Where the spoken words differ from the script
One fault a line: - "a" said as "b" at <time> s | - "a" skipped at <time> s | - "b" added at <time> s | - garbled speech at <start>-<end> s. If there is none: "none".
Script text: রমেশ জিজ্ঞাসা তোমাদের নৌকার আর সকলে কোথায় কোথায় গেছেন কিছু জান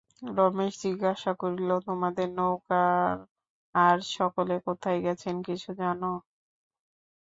- "করিল" added at 1.4 s
- "কোথায়" skipped at 5.0 s